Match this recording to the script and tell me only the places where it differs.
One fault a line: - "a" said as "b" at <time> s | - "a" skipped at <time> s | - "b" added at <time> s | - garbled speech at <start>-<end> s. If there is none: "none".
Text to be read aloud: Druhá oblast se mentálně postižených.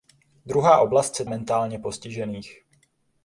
none